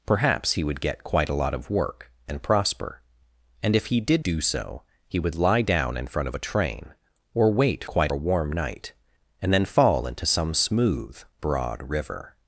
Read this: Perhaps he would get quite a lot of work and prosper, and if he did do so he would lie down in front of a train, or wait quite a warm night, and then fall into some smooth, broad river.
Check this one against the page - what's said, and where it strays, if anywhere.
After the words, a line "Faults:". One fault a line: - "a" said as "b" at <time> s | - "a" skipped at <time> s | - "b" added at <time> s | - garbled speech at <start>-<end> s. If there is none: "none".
Perhaps he would get quite a lot of work and prosper, and if he did do so he would lie down in front of a train, or wait quite a warm night, and then fall into some smooth, broad river.
Faults:
none